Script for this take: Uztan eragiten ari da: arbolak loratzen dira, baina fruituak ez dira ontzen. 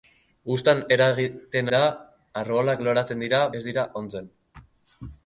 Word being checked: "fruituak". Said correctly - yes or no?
no